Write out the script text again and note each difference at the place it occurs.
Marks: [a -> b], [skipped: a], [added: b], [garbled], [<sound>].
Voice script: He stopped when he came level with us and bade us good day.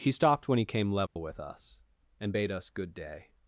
He stopped when he came level [dropout] with us and bade us good day.